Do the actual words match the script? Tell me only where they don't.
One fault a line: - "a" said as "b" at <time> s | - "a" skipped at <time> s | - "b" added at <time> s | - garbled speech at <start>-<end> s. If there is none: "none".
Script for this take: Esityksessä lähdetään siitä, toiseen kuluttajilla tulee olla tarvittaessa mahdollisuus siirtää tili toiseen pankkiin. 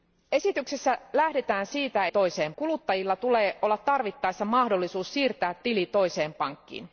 none